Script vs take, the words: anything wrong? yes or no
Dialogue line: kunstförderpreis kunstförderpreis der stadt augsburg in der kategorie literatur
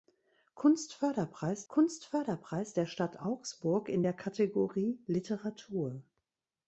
no